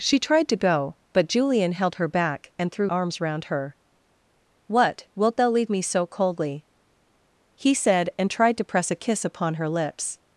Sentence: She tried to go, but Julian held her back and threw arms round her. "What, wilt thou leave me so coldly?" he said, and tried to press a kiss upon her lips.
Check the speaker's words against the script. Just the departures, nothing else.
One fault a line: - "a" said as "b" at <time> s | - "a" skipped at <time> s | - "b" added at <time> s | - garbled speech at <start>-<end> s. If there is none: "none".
none